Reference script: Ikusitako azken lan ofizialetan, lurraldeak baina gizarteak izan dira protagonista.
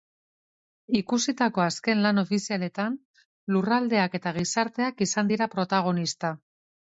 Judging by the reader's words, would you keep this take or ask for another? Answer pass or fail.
fail